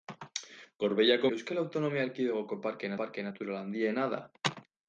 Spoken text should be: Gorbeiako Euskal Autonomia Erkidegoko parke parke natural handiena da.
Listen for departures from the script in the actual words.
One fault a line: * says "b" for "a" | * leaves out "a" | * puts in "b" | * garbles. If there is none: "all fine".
all fine